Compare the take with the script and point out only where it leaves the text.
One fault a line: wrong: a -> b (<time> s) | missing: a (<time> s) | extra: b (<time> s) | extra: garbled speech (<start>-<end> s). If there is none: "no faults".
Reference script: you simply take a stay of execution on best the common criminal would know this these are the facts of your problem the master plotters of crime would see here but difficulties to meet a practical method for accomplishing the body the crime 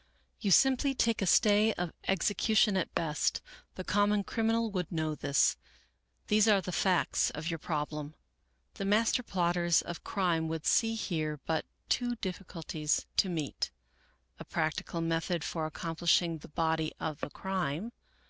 wrong: on -> at (2.8 s)
extra: two (11.9 s)
extra: of (17.0 s)